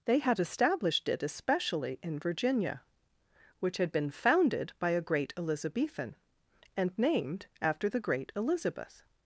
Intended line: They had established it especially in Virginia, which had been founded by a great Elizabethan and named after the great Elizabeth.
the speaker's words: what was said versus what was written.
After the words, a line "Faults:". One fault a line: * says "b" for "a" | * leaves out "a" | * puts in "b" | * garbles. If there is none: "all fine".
They had established it especially in Virginia, which had been founded by a great Elizabethan and named after the great Elizabeth.
Faults:
all fine